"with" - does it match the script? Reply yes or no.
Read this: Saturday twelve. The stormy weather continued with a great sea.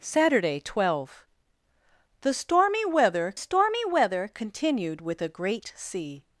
yes